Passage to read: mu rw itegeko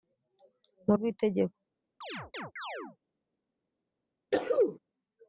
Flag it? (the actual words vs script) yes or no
no